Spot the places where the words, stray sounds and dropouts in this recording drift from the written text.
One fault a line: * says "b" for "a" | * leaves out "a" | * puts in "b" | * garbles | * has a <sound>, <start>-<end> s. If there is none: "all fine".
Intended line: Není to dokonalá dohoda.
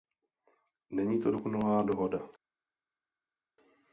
all fine